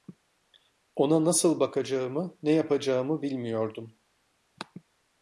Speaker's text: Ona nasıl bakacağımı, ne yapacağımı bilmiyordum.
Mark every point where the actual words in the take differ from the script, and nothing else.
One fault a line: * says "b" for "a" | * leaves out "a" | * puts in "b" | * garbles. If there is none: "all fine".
all fine